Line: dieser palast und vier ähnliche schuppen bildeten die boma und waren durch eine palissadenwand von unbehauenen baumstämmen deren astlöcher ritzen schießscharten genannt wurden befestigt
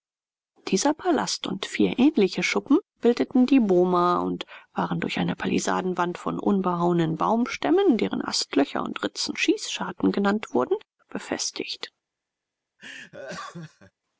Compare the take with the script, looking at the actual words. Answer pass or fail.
fail